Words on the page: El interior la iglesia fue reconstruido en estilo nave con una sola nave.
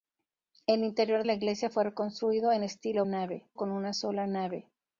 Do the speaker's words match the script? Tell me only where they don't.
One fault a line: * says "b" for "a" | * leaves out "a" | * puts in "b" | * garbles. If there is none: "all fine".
all fine